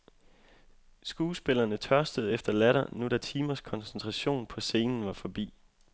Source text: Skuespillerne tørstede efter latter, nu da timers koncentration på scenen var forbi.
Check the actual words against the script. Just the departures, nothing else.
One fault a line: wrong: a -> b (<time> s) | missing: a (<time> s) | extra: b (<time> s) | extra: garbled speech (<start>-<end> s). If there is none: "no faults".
no faults